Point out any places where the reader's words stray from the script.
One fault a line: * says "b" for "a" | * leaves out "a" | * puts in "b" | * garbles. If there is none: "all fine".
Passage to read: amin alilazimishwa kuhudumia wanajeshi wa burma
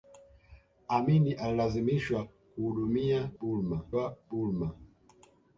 * says "burma" for "wanajeshi"